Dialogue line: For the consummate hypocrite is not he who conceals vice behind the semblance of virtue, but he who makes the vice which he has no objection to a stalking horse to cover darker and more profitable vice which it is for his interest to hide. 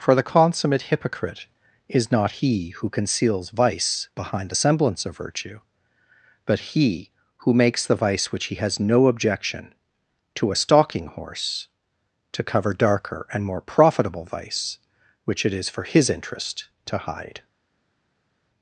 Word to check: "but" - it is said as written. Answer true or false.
true